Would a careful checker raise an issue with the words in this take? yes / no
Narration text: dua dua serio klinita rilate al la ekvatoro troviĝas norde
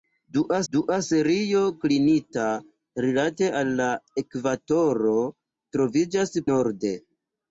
no